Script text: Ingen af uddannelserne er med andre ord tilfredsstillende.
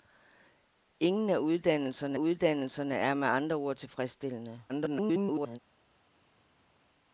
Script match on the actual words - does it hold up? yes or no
no